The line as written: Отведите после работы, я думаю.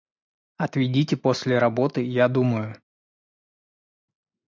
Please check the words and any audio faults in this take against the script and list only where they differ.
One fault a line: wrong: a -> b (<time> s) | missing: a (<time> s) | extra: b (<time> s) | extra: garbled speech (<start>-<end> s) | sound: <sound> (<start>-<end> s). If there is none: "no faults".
no faults